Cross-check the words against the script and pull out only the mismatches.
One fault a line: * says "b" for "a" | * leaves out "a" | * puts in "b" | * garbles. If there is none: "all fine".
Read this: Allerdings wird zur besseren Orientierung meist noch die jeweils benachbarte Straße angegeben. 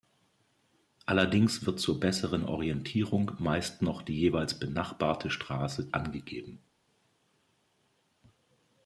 all fine